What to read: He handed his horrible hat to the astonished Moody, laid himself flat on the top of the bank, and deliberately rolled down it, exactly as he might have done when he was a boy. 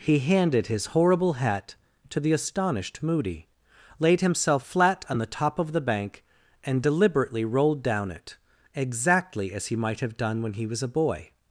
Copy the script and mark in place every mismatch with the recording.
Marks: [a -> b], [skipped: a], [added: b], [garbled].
He handed his horrible hat to the astonished Moody, laid himself flat on the top of the bank, and deliberately rolled down it, exactly as he might have done when he was a boy.